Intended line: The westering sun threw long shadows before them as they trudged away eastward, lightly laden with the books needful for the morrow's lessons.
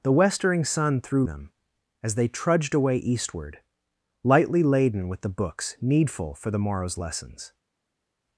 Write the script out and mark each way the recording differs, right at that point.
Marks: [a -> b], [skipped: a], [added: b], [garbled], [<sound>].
The westering sun threw [skipped: long shadows before] them as they trudged away eastward, lightly laden with the books needful for the morrow's lessons.